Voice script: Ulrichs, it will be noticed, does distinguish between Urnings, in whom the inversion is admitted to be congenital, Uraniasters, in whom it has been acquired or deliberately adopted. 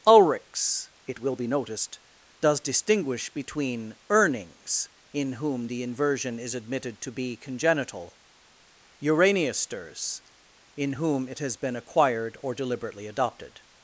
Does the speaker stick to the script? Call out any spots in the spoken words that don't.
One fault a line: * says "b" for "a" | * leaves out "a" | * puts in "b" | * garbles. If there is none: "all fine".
all fine